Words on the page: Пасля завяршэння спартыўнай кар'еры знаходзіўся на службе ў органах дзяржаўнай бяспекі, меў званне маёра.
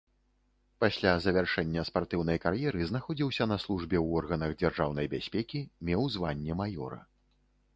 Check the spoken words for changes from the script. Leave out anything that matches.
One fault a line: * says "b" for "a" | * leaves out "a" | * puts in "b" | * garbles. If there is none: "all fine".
all fine